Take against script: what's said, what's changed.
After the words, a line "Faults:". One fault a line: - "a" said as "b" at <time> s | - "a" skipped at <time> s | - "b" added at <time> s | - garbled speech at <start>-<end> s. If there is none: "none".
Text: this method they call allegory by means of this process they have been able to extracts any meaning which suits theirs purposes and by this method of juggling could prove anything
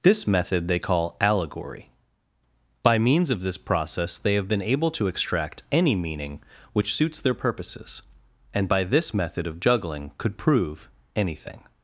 this method they call allegory by means of this process they have been able to extract any meaning which suits their purposes and by this method of juggling could prove anything
Faults:
- "extracts" said as "extract" at 5.1 s
- "theirs" said as "their" at 7.2 s